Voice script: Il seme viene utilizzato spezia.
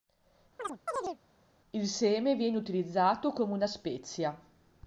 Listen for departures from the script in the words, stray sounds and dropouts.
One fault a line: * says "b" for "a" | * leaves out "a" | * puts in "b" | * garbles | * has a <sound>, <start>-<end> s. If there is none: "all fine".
* has a chirp, 0.6-1.2 s
* puts in "come una"